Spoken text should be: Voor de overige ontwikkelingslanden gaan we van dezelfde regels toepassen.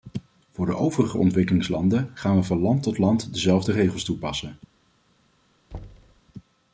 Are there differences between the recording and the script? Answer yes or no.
yes